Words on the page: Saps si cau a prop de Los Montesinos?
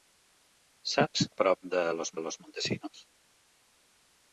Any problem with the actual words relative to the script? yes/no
yes